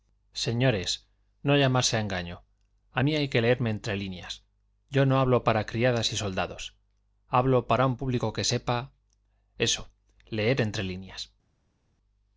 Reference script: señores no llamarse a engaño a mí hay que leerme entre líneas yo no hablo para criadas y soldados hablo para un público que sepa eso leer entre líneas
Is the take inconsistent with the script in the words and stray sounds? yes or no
no